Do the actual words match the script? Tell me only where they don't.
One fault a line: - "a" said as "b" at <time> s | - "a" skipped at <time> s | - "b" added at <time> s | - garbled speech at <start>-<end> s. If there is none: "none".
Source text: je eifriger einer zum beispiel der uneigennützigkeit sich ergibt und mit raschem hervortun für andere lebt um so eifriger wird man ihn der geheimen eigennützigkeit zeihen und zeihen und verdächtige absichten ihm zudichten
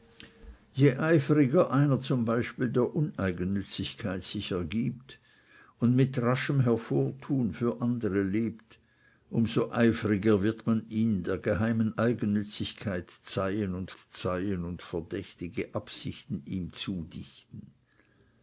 none